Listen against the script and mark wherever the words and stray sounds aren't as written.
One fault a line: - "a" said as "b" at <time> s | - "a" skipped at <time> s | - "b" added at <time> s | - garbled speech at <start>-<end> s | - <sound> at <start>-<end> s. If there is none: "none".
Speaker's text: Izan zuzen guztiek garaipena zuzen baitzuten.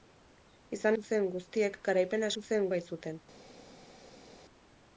none